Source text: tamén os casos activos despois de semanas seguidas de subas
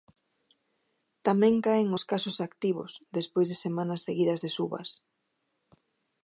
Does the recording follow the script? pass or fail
fail